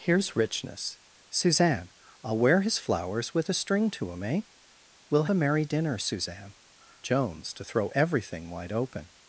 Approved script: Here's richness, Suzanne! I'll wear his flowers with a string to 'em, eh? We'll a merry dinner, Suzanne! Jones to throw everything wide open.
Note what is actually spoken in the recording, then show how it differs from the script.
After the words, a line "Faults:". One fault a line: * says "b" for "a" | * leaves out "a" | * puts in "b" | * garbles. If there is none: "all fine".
Here's richness, Suzanne! I'll wear his flowers with a string to 'em, eh? We'll a merry dinner, Suzanne! Jones to throw everything wide open.
Faults:
all fine